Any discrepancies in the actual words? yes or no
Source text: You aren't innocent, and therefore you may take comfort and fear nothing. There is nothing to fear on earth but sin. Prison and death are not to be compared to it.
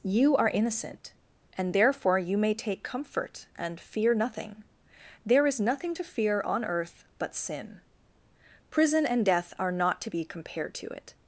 yes